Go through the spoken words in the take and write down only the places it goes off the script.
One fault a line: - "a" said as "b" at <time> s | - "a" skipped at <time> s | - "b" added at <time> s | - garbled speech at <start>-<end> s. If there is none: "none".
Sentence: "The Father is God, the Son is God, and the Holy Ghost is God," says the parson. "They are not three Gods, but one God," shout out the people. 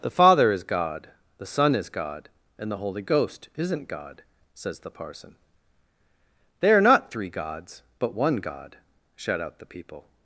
- "is" said as "isn't" at 3.5 s